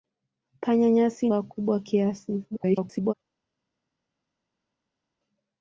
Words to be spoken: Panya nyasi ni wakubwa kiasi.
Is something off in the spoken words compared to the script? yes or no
yes